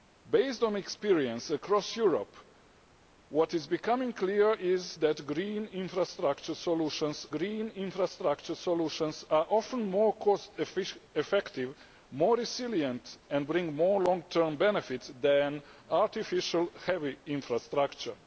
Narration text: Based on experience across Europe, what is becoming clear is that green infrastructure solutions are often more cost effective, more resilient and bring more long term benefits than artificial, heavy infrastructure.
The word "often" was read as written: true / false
true